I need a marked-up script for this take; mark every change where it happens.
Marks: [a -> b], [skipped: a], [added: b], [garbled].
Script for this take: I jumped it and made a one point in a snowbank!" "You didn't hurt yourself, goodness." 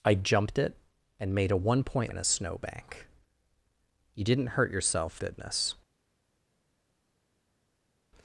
I jumped it and made a one point in a snowbank!" "You didn't hurt yourself, goodness."